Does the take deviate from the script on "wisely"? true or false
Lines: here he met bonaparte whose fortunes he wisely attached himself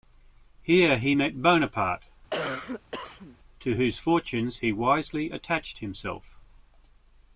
false